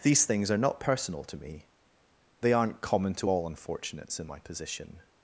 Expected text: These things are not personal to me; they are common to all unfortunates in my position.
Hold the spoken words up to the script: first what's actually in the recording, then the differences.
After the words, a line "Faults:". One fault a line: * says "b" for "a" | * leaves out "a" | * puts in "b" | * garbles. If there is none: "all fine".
These things are not personal to me; they aren't common to all unfortunates in my position.
Faults:
* says "aren't" for "are"